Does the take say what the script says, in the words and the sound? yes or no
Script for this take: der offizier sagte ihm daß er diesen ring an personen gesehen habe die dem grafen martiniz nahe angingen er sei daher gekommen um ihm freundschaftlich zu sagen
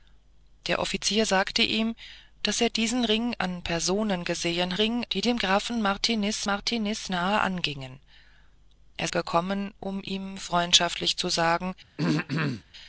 no